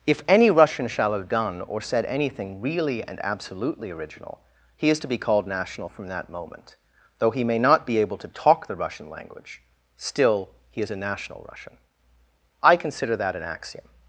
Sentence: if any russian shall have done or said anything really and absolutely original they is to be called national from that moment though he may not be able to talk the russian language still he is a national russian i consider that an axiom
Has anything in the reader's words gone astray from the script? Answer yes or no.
yes